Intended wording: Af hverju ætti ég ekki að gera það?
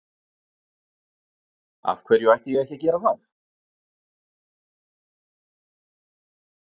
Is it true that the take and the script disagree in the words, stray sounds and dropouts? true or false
false